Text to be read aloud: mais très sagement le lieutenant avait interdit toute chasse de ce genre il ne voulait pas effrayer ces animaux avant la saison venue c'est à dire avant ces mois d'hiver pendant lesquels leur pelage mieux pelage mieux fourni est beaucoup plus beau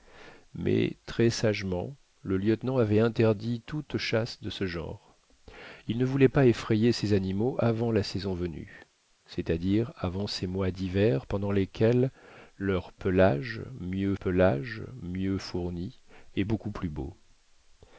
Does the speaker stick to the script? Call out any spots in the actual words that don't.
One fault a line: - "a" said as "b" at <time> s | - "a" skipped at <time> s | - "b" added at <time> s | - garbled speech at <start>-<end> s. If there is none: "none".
none